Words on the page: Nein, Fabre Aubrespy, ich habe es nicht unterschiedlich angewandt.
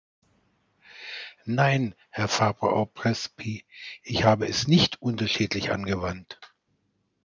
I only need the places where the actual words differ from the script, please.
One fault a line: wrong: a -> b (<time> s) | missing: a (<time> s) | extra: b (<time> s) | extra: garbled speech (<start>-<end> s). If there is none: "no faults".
extra: Herr (2.1 s)